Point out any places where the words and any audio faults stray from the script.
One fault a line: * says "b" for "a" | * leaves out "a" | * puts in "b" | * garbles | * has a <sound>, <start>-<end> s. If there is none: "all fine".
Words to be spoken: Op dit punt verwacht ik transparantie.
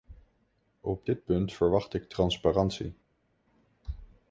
all fine